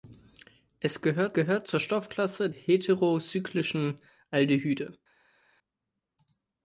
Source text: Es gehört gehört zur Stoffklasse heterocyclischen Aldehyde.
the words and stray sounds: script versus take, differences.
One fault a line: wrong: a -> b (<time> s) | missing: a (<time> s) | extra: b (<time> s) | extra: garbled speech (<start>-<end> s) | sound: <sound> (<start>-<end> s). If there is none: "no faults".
no faults